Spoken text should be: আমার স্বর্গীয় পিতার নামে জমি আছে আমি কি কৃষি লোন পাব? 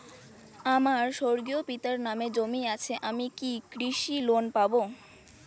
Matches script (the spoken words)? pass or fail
pass